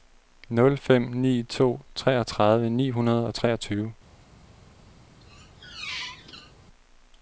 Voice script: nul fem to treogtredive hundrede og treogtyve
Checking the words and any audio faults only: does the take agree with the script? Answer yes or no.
no